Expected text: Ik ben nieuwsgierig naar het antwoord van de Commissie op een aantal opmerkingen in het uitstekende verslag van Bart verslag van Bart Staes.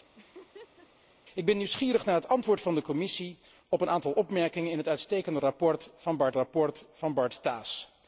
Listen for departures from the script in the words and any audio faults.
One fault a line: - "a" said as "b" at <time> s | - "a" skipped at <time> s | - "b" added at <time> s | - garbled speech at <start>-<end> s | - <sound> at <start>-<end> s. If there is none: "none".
- laugh at 0.1-1.1 s